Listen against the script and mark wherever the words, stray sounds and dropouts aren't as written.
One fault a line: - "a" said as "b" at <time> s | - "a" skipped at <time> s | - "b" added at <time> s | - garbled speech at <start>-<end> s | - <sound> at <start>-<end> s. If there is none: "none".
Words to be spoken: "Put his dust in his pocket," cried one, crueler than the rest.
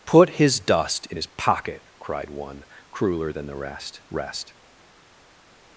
- "rest" added at 4.1 s